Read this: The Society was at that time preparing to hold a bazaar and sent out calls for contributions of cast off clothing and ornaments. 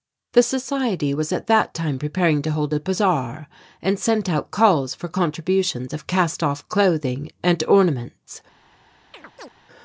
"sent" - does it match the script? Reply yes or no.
yes